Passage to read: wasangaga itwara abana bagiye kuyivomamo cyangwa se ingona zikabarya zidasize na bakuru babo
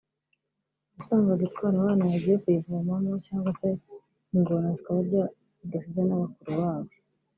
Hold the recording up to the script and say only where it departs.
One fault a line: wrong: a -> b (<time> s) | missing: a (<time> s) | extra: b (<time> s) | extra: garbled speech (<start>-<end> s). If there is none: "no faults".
no faults